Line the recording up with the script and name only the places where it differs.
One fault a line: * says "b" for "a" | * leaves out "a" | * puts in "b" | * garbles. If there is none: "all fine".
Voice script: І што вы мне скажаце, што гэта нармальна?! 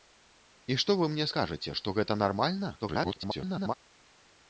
* garbles